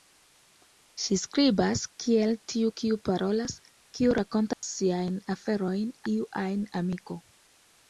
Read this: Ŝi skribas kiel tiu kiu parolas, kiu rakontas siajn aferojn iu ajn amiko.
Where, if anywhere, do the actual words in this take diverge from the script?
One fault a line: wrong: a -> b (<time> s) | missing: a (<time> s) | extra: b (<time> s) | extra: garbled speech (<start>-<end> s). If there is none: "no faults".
no faults